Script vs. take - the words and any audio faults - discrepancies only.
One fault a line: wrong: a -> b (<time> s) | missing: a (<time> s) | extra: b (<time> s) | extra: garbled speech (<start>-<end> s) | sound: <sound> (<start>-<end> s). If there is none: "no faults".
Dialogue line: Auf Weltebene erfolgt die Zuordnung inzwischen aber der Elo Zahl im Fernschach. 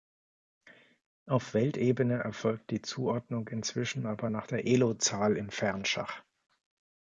extra: nach (4.3 s)